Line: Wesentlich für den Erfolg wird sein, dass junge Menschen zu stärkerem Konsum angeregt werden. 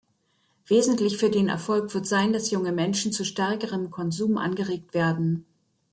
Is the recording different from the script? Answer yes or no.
no